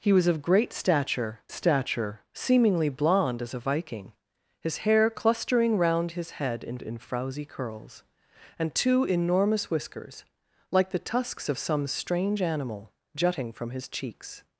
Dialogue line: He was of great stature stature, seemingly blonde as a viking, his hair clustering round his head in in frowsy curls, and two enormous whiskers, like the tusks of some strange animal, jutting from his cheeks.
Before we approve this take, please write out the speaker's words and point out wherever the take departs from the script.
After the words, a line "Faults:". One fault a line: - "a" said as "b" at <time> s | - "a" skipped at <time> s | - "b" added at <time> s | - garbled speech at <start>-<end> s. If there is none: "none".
He was of great stature stature, seemingly blonde as a viking, his hair clustering round his head in in frowsy curls, and two enormous whiskers, like the tusks of some strange animal, jutting from his cheeks.
Faults:
none